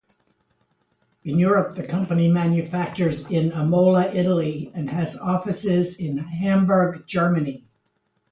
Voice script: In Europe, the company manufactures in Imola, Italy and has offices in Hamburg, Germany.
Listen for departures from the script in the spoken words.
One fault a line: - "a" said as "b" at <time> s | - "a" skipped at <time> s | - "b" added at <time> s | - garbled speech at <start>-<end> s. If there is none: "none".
none